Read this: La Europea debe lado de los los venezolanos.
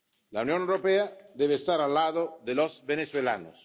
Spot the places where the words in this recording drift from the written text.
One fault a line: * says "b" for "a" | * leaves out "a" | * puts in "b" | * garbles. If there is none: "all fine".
* puts in "Unión"
* puts in "estar al"
* leaves out "los"